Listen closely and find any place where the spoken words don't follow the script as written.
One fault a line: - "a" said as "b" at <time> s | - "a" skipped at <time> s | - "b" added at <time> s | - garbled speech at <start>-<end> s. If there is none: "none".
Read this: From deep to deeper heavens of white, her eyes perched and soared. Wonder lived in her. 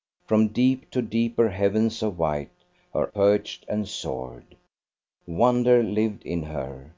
- "eyes" skipped at 3.1 s